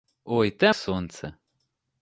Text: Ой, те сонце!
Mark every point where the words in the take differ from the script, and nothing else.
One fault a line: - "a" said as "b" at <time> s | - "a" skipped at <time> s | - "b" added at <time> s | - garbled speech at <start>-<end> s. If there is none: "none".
none